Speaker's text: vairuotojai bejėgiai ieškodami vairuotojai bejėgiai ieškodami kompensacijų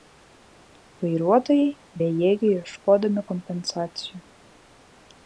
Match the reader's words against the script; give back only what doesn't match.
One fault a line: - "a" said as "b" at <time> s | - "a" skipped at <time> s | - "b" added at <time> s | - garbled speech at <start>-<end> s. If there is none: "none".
- "vairuotojai bejėgiai ieškodami" skipped at 3.3 s